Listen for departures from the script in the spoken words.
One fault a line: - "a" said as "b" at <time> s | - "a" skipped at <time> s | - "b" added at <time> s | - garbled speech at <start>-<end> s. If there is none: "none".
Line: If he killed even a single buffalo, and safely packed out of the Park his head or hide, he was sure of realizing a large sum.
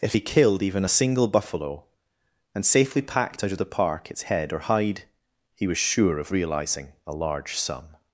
- "his" said as "its" at 4.1 s